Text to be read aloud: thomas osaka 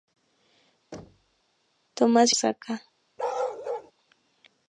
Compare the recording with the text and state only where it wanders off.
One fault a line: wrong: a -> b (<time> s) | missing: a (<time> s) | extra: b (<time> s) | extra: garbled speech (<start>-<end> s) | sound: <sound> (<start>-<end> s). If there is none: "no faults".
sound: thud (0.9-1.4 s)
sound: bark (3.2-3.9 s)